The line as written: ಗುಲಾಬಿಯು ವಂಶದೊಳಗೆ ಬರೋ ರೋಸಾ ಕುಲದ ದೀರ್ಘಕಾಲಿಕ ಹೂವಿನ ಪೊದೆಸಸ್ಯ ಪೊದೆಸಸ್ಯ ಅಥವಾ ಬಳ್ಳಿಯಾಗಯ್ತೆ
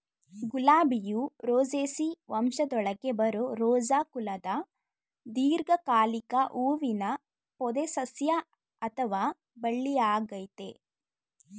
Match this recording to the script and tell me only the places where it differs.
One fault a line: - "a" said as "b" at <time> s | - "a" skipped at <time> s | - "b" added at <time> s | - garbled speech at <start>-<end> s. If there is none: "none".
- "ರೋಸೇಸಿ" added at 1.5 s
- "ಪೊದೆಸಸ್ಯ" skipped at 8.4 s